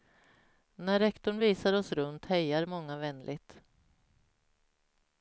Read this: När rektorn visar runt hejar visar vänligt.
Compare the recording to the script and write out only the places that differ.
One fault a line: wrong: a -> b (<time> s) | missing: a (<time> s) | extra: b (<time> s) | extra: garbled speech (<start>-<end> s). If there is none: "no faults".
extra: oss (1.7 s)
wrong: visar -> många (2.6 s)